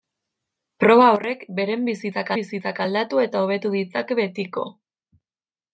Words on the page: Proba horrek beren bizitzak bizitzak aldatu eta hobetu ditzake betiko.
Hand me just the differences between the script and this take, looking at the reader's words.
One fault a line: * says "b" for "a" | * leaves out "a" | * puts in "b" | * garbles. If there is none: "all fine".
all fine